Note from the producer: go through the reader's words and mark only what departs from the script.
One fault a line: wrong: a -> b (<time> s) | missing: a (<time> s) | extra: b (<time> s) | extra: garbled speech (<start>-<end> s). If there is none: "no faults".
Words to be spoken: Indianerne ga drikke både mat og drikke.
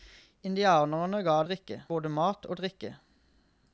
no faults